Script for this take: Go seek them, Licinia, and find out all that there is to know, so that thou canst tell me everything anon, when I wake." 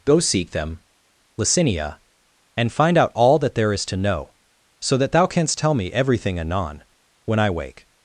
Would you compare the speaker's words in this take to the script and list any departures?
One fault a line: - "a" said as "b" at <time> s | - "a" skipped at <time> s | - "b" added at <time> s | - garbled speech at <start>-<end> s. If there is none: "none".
none